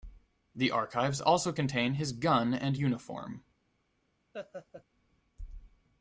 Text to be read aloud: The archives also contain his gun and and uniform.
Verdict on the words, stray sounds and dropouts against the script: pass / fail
fail